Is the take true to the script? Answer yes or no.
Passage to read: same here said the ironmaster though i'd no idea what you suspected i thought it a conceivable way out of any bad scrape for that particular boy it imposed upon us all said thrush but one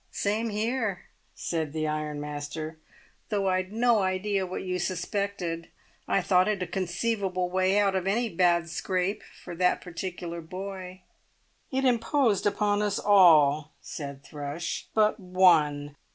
yes